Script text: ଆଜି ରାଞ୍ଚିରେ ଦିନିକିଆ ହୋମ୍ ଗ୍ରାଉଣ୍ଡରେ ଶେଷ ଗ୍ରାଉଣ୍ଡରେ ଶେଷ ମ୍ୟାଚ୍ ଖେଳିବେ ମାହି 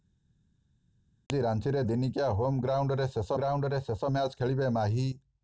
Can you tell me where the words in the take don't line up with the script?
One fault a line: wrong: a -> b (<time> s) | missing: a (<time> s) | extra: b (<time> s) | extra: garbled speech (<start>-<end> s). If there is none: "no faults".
no faults